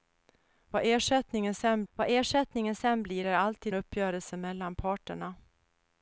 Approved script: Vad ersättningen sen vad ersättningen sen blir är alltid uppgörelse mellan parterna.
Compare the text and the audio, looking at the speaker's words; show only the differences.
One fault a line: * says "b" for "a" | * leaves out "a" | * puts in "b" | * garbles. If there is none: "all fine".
all fine